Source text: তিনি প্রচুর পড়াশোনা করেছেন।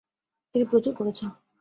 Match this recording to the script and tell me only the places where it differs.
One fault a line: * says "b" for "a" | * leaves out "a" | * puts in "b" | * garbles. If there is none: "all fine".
* leaves out "পড়াশোনা"